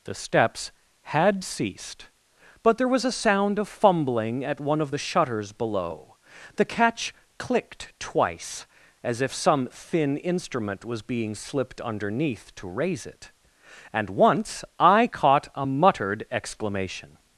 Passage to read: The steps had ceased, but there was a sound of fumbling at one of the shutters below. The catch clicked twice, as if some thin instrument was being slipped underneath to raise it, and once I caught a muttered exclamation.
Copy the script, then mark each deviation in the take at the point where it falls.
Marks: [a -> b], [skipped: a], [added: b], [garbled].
The steps had ceased, but there was a sound of fumbling at one of the shutters below. The catch clicked twice, as if some thin instrument was being slipped underneath to raise it, and once I caught a muttered exclamation.